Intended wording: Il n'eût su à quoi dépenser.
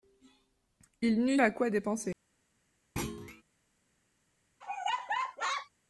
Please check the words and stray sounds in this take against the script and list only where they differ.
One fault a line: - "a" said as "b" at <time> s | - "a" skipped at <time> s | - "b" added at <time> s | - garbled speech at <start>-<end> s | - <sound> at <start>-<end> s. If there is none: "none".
- "su" skipped at 1.4 s
- thud at 3.0-3.4 s
- laugh at 4.6-5.7 s